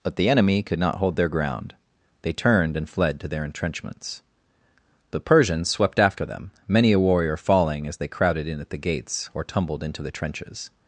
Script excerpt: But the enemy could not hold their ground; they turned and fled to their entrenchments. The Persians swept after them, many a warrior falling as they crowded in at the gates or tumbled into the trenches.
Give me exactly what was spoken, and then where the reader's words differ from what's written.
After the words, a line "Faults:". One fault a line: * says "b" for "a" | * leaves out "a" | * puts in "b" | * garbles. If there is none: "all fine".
But the enemy could not hold their ground; they turned and fled to their entrenchments. The Persians swept after them, many a warrior falling as they crowded in at the gates or tumbled into the trenches.
Faults:
all fine